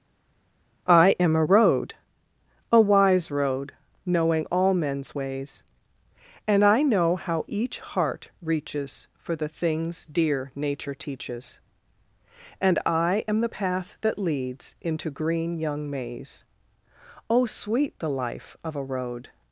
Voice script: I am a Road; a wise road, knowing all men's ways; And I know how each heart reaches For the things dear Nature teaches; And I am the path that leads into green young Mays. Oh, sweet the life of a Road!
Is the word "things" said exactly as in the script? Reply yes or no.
yes